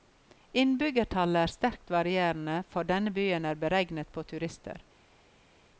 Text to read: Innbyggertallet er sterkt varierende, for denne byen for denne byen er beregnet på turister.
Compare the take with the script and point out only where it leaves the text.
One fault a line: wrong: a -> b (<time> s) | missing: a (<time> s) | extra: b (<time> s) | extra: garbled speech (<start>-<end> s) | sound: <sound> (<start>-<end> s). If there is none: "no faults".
missing: for denne byen (3.5 s)